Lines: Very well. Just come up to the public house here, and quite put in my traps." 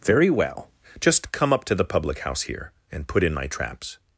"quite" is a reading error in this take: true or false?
true